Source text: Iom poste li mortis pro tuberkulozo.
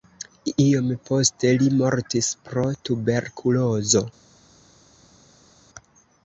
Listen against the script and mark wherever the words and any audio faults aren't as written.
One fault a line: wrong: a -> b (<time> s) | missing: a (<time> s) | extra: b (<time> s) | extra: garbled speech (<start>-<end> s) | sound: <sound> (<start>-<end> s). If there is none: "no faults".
no faults